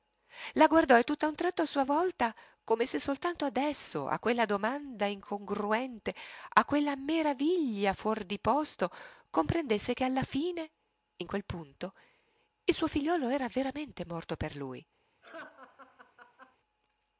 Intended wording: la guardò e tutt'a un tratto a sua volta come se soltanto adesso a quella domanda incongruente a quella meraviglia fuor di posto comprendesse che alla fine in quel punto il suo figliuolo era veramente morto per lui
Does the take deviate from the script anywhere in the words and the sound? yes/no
yes